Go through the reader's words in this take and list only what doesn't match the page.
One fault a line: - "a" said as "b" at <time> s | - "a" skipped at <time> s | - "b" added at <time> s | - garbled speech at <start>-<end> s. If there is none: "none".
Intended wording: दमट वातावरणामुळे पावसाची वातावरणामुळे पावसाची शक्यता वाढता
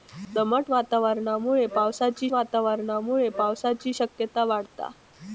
none